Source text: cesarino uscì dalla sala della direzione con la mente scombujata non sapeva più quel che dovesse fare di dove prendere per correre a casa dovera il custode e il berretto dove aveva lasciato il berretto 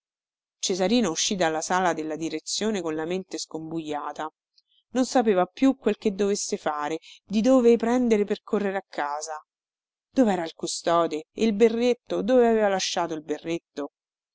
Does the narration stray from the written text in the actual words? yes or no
no